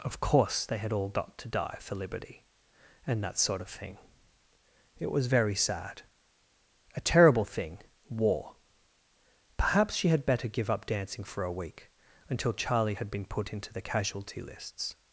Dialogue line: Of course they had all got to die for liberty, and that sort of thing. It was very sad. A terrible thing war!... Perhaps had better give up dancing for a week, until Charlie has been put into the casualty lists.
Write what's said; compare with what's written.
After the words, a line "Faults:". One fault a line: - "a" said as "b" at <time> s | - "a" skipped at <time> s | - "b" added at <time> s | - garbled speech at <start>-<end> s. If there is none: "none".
Of course they had all got to die for liberty, and that sort of thing. It was very sad. A terrible thing war!... Perhaps she had better give up dancing for a week, until Charlie had been put into the casualty lists.
Faults:
- "she" added at 9.9 s
- "has" said as "had" at 12.9 s